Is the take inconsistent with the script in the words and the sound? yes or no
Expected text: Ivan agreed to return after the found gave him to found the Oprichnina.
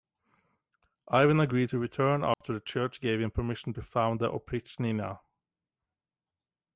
yes